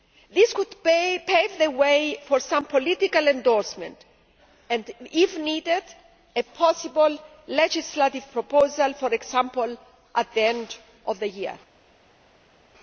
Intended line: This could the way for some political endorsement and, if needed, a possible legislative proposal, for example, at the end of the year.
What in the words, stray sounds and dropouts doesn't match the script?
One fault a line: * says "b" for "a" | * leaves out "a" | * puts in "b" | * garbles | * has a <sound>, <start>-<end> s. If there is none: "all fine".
* puts in "pave"